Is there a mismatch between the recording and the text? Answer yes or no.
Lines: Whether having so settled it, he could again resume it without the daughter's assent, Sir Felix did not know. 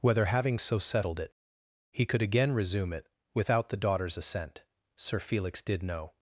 yes